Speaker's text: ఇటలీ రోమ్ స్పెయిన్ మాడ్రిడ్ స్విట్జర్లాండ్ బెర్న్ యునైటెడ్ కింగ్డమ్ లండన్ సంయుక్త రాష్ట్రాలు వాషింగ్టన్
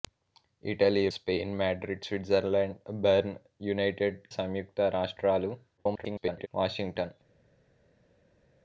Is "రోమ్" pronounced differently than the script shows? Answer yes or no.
yes